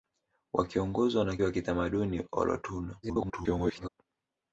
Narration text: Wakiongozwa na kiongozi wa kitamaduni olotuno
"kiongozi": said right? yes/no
no